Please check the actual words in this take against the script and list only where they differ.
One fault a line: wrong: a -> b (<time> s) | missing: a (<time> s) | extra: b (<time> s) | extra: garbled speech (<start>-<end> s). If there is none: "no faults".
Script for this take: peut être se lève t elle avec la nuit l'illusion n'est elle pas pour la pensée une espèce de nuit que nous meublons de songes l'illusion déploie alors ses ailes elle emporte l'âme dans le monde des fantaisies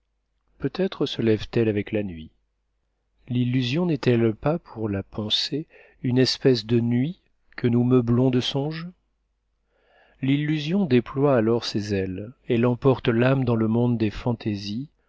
no faults